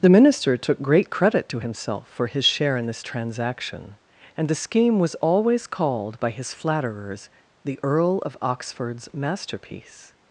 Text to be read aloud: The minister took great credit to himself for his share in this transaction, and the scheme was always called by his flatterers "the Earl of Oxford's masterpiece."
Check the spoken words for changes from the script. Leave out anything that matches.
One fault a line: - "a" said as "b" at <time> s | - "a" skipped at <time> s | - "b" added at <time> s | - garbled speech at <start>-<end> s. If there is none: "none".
none